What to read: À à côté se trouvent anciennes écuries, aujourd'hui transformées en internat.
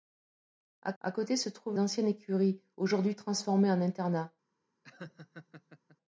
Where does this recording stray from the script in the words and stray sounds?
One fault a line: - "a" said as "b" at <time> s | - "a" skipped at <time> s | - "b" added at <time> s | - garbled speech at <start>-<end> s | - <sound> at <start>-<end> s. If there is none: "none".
- laugh at 4.8-6.0 s